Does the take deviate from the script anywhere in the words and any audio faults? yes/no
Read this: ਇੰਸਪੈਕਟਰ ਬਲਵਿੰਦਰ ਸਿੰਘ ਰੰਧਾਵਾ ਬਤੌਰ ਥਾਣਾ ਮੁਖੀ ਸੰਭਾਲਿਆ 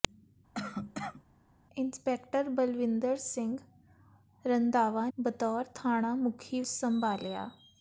yes